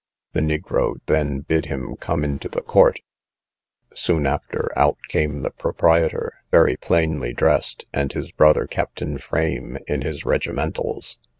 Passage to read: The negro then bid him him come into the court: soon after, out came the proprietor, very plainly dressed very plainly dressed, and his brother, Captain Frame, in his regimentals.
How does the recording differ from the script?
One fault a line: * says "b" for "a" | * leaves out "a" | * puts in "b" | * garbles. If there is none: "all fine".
* leaves out "him"
* leaves out "very plainly dressed"